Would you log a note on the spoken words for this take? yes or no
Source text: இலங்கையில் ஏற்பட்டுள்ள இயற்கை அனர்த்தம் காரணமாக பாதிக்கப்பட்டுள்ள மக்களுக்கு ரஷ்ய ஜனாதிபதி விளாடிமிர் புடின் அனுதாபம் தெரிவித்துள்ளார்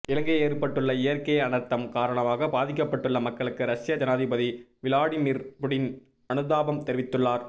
no